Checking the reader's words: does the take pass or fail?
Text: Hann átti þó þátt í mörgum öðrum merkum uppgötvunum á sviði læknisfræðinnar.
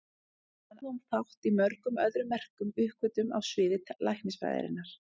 fail